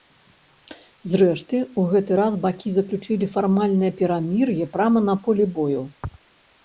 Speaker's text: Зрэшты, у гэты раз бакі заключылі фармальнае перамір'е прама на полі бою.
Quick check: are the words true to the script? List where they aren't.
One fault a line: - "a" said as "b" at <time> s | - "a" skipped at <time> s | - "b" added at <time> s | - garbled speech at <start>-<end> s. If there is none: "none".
none